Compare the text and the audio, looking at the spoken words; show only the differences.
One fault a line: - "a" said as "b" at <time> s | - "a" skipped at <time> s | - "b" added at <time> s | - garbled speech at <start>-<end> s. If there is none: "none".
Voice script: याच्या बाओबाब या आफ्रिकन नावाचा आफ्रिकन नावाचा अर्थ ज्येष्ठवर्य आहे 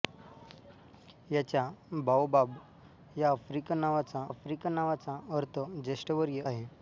none